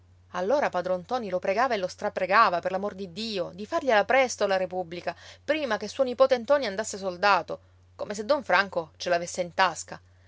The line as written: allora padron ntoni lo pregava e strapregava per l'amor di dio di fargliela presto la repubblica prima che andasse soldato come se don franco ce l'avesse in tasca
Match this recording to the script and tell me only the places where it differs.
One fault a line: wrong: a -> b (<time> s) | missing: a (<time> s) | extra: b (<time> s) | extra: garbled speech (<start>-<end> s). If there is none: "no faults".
extra: lo (1.8 s)
extra: suo nipote ntoni (5.9 s)